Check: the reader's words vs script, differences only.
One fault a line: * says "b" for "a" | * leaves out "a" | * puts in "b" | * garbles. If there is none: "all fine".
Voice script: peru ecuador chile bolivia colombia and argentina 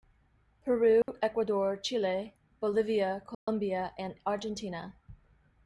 all fine